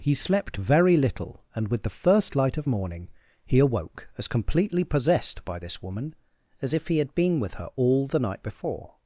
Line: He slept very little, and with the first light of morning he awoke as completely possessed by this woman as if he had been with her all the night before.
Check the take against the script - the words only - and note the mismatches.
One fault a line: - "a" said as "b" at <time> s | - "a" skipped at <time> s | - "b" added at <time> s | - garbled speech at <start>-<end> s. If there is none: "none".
none